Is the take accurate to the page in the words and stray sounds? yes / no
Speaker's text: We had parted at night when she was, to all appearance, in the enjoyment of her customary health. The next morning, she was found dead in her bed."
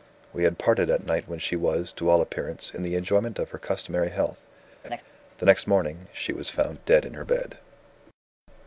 no